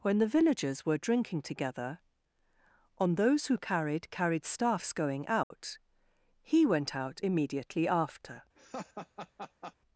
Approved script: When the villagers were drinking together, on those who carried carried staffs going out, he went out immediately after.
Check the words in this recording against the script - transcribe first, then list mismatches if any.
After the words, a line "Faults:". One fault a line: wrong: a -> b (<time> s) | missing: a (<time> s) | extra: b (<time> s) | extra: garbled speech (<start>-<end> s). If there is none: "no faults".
When the villagers were drinking together, on those who carried carried staffs going out, he went out immediately after.
Faults:
no faults